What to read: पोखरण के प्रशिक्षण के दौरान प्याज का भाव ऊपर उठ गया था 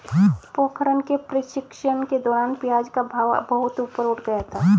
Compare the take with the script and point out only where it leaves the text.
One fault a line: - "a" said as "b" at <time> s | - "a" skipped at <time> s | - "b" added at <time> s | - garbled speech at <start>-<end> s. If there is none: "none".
- "बहुत" added at 3.5 s